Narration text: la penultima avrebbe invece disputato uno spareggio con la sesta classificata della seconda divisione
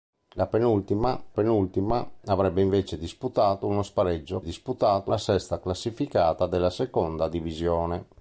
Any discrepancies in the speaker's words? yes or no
yes